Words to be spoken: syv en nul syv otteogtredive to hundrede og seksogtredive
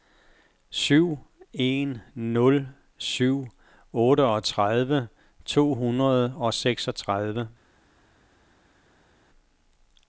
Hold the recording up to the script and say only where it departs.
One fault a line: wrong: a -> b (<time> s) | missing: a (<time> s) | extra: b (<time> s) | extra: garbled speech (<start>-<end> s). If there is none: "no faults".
no faults